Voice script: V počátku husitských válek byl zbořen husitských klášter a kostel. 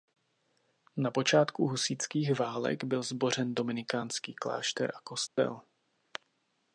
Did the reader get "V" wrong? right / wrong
wrong